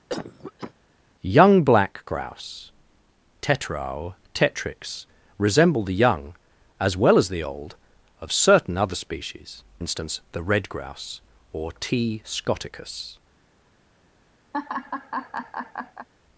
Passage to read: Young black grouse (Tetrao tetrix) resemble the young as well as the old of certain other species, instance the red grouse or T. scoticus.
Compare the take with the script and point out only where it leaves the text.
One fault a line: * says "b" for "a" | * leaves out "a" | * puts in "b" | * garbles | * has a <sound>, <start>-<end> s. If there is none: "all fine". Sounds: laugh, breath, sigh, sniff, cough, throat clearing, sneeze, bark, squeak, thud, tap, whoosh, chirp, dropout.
* has a cough, 0.1-0.7 s
* has a laugh, 14.5-16.1 s